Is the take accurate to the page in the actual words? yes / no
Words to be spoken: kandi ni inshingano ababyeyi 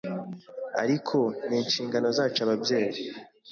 no